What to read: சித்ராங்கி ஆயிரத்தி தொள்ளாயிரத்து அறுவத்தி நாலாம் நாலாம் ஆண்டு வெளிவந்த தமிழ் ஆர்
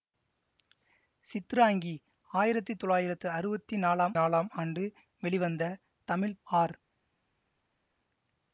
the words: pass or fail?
pass